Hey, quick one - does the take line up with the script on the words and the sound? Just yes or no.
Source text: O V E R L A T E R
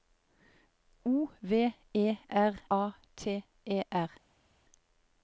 no